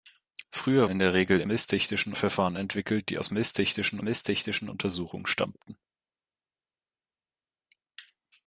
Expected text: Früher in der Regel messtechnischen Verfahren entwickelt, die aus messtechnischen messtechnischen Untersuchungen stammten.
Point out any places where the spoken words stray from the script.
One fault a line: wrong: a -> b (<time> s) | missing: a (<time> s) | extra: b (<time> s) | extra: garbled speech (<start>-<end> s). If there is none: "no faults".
no faults